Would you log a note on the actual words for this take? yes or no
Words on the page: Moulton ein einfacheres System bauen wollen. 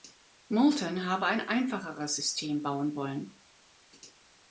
yes